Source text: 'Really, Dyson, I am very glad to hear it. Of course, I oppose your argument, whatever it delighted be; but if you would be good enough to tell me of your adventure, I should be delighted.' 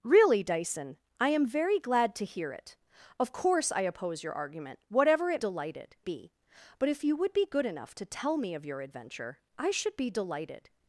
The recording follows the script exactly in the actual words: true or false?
true